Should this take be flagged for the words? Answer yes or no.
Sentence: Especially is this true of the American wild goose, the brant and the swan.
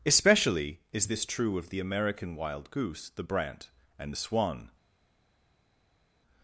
no